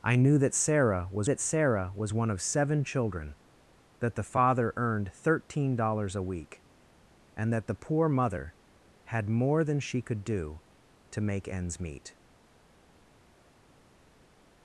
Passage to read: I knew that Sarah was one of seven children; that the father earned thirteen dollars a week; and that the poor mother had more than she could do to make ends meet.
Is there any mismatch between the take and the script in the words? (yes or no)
yes